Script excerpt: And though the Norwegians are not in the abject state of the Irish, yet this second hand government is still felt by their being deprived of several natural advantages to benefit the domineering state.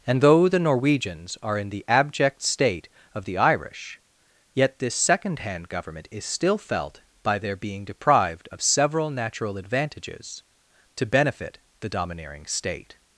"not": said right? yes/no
no